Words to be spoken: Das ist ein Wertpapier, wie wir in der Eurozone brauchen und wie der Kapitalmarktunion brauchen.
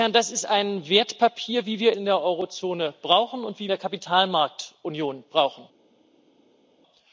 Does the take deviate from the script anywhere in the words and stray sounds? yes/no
no